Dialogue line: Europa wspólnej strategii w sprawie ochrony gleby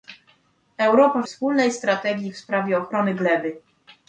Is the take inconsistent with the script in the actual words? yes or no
no